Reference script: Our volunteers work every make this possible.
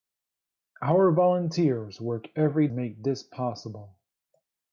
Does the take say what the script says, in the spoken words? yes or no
yes